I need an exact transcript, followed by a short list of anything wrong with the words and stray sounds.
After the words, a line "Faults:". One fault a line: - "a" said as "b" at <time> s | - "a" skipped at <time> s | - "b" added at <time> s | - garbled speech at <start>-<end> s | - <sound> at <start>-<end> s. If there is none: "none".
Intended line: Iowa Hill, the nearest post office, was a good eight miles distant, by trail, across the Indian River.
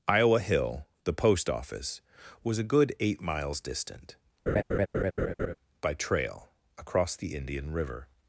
Iowa Hill, the post office, was a good eight miles distant, by trail, across the Indian River.
Faults:
- "nearest" skipped at 1.1 s
- laugh at 4.5-5.5 s